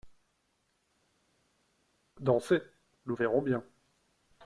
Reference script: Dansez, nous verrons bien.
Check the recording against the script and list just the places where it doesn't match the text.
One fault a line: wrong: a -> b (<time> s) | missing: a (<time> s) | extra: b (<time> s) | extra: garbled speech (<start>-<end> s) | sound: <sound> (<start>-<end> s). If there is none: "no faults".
no faults